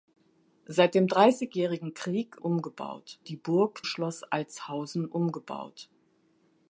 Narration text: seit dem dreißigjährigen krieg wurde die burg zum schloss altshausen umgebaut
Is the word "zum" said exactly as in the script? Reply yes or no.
no